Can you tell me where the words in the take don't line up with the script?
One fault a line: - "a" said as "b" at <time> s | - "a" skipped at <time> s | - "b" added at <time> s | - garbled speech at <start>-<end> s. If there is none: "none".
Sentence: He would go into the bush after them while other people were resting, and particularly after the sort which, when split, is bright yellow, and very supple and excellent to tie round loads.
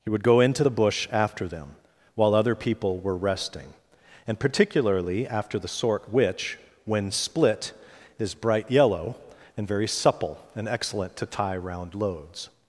none